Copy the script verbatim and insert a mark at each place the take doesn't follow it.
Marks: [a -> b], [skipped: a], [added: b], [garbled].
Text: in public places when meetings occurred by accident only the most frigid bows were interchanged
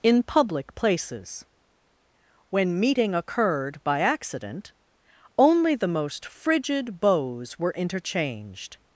in public places when [meetings -> meeting] occurred by accident only the most frigid bows were interchanged